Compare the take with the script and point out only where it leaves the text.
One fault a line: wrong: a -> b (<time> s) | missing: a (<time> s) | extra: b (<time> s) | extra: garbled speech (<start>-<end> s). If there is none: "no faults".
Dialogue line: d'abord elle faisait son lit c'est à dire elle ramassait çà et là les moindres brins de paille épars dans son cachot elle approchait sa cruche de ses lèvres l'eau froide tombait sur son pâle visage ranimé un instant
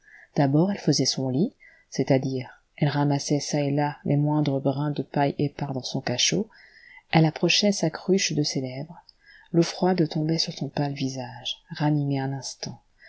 no faults